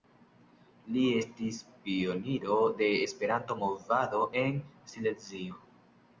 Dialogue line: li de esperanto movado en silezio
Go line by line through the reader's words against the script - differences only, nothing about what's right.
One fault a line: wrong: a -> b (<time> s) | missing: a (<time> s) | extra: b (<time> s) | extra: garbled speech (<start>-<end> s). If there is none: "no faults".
extra: estis pioniro (1.2 s)